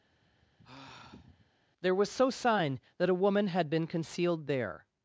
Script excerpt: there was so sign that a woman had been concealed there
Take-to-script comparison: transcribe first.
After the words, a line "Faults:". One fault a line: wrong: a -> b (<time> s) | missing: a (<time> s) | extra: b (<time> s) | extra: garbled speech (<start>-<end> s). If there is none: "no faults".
there was so sign that a woman had been concealed there
Faults:
no faults